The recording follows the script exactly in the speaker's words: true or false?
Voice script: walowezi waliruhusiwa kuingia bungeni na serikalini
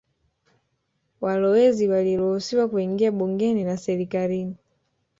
true